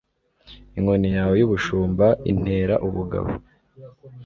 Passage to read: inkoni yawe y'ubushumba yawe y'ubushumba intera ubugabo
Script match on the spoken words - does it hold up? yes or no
no